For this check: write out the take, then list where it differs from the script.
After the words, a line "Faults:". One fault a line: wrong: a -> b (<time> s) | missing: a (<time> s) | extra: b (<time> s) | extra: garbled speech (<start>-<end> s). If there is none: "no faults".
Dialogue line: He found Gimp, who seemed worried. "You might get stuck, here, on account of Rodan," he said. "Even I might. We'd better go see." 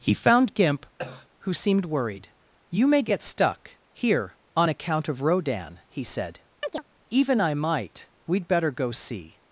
He found Gimp, who seemed worried. "You may get stuck, here, on account of Rodan," he said. "Even I might. We'd better go see."
Faults:
wrong: might -> may (2.9 s)